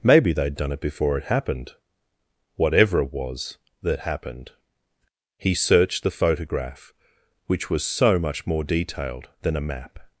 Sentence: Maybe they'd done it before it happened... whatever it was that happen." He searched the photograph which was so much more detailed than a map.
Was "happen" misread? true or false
true